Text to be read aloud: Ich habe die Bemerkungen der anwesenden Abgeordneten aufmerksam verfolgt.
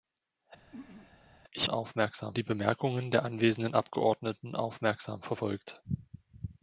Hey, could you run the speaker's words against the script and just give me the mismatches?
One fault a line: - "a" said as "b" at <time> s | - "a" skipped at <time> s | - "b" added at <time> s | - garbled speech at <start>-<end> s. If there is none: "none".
- "habe" said as "aufmerksam" at 1.7 s